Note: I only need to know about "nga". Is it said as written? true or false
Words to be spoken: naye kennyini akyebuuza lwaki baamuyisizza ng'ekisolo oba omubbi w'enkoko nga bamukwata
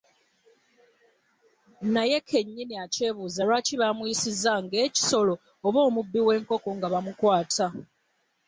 true